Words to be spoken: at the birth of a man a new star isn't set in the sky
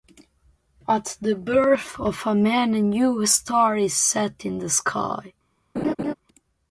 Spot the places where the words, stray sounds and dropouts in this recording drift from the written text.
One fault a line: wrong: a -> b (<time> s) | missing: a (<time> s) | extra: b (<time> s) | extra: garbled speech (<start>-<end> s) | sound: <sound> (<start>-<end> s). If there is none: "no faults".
wrong: isn't -> is (3.8 s)
sound: laugh (5.8-6.1 s)